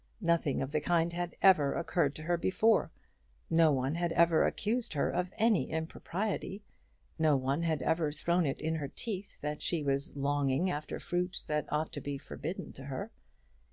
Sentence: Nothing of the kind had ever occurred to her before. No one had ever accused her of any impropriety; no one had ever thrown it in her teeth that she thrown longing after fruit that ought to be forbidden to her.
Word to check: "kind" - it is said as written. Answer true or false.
true